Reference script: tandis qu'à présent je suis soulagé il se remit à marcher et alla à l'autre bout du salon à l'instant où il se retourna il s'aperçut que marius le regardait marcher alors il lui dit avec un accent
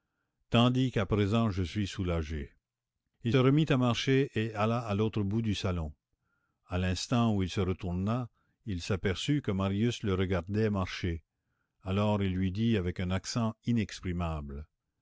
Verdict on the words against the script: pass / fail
fail